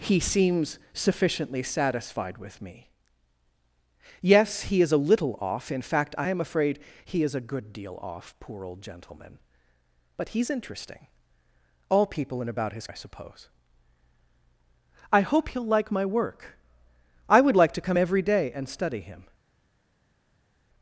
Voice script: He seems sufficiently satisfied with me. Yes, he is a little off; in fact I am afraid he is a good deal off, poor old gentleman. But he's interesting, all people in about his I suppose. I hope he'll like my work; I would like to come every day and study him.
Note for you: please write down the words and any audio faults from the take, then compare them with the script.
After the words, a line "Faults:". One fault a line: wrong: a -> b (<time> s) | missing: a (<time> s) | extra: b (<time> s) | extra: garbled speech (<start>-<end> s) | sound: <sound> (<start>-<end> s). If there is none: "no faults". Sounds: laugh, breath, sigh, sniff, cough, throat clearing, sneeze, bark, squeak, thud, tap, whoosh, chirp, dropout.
He seems sufficiently satisfied with me. Yes, he is a little off; in fact I am afraid he is a good deal off, poor old gentleman. But he's interesting, all people in about his I suppose. I hope he'll like my work; I would like to come every day and study him.
Faults:
no faults